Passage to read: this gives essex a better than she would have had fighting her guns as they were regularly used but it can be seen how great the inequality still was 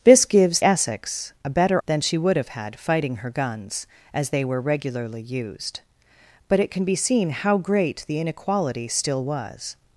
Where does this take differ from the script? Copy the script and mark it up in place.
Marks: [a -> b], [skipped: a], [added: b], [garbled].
this gives essex a better than she would have had fighting her guns as they were regularly used but it can be seen how great the inequality still was